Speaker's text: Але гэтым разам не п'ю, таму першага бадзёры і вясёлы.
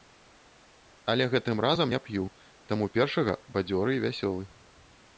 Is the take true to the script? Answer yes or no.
yes